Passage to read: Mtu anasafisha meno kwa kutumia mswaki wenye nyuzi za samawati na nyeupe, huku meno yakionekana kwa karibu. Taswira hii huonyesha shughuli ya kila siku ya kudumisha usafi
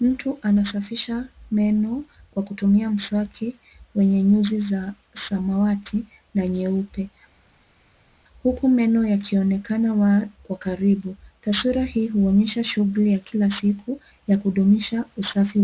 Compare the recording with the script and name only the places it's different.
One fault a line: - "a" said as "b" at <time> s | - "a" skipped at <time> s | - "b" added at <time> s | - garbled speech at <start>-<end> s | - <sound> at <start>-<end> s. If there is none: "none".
none